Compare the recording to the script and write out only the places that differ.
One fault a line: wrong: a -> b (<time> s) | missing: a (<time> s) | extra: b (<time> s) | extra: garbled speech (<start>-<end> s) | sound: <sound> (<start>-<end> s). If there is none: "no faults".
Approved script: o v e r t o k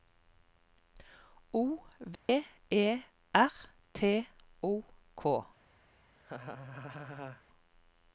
sound: dropout (2.2-2.3 s)
sound: laugh (6.2-7.4 s)